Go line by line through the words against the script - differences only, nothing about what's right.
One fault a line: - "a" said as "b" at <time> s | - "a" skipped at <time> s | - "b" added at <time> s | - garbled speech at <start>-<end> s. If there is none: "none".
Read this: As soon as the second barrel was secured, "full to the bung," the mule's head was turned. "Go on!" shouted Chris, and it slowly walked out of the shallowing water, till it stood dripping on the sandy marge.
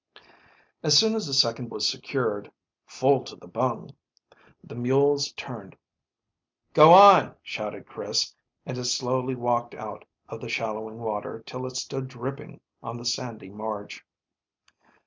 - "barrel" skipped at 1.7 s
- "head was" skipped at 5.3 s